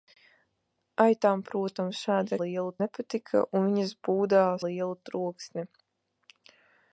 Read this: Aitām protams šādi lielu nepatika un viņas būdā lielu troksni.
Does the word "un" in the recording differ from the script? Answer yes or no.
no